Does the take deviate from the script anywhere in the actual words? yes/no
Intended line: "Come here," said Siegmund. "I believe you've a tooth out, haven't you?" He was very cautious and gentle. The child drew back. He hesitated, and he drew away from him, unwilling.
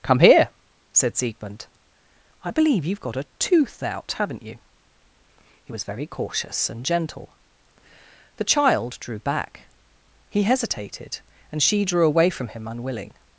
yes